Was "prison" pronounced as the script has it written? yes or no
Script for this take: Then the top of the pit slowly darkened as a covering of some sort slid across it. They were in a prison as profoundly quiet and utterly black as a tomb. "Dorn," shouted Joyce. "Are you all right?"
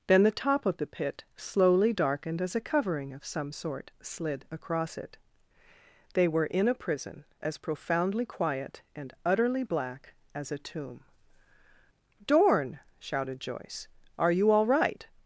yes